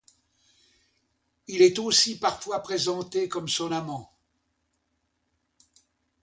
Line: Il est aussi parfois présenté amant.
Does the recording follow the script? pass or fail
fail